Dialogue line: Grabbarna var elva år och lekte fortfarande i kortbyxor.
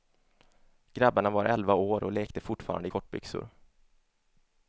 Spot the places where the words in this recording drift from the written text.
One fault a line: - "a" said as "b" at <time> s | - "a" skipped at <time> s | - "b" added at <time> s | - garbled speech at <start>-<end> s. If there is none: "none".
none